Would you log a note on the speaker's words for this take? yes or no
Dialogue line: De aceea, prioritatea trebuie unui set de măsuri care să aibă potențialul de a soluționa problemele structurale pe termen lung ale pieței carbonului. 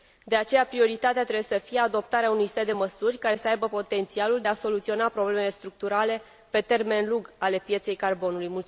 yes